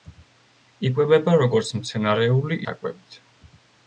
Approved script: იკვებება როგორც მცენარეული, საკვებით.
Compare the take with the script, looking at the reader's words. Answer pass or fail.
pass